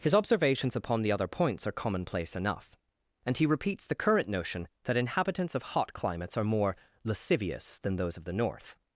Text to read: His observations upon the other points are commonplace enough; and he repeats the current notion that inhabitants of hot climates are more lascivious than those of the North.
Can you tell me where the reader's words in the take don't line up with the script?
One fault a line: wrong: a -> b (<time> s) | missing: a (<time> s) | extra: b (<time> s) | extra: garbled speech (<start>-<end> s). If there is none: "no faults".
no faults